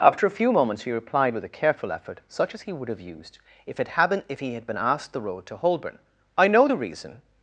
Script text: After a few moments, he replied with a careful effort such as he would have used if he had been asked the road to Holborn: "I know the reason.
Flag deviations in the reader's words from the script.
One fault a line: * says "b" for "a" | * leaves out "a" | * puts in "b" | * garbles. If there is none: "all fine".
* puts in "it had been if"